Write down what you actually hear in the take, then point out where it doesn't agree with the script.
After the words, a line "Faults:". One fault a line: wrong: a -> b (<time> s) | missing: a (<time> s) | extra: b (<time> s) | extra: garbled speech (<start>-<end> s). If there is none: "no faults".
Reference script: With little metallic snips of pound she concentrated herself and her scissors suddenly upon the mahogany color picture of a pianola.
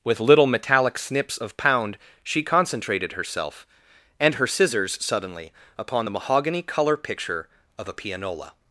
With little metallic snips of pound she concentrated herself and her scissors suddenly upon the mahogany color picture of a pianola.
Faults:
no faults